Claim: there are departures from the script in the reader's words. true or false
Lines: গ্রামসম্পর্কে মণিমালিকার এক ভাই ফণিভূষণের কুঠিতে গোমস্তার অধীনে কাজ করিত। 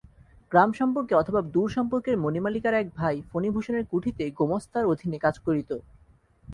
true